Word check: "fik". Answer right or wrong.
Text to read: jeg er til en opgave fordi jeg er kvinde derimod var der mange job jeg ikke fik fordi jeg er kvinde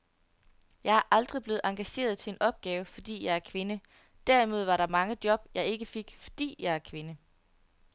right